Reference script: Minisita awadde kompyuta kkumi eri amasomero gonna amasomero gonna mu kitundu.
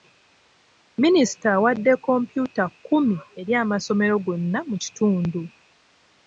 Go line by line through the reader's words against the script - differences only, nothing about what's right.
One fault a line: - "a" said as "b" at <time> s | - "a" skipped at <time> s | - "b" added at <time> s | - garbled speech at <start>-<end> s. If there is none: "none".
- "amasomero gonna" skipped at 4.6 s